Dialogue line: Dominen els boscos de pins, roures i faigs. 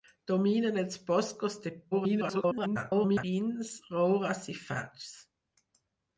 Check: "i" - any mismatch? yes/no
no